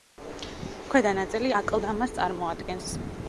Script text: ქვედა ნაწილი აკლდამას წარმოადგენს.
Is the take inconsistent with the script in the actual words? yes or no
no